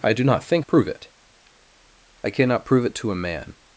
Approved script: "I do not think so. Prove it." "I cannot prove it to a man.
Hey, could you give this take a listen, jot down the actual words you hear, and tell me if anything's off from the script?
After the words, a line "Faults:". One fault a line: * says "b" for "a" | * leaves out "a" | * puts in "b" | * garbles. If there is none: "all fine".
"I do not think. Prove it." "I cannot prove it to a man.
Faults:
* leaves out "so"